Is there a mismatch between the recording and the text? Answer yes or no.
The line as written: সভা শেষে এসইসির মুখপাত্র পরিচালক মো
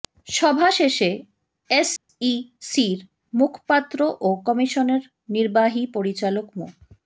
yes